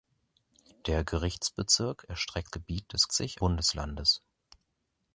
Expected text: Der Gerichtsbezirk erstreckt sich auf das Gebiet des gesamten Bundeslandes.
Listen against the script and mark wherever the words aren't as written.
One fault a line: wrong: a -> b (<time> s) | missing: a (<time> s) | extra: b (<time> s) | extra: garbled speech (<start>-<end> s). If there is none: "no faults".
missing: sich auf das (2.5 s)
wrong: gesamten -> sich (3.1 s)